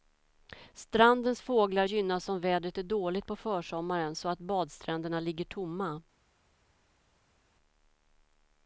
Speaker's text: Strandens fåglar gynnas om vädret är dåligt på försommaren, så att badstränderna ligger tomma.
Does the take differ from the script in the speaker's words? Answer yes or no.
no